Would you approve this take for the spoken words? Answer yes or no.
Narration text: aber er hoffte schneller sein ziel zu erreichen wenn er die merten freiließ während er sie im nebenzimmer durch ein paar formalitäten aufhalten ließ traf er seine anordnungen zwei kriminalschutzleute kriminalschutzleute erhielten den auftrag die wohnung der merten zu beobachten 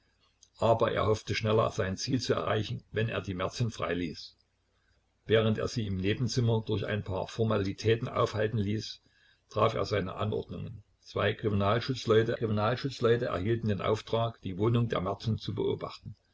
yes